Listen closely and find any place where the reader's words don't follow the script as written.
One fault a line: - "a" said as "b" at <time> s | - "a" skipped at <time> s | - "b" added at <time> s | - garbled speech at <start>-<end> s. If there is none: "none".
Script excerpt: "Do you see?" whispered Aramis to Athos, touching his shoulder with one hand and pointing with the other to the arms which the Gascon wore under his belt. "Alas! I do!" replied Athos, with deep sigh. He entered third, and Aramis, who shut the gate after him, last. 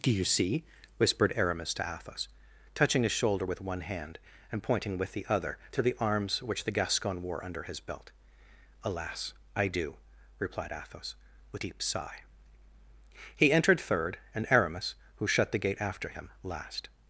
none